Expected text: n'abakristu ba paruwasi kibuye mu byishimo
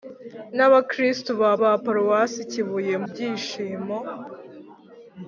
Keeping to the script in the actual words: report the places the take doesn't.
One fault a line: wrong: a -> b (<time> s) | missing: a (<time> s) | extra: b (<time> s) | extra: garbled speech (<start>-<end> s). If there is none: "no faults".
extra: ba (1.6 s)
missing: mu (2.9 s)